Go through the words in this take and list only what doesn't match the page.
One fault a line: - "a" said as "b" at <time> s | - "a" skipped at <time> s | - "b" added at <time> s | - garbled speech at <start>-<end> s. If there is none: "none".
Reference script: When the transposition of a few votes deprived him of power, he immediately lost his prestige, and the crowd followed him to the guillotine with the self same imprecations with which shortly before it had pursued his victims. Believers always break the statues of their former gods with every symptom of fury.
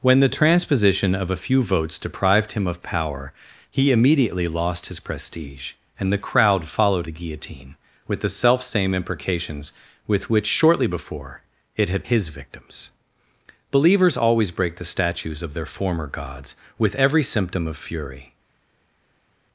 - "him to" skipped at 7.0 s
- "pursued" skipped at 12.1 s